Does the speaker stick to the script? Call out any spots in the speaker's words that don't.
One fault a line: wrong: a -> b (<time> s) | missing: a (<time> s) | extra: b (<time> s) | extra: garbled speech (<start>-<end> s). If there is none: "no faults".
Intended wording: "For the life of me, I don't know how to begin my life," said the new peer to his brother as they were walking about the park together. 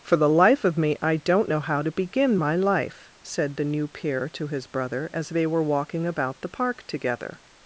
no faults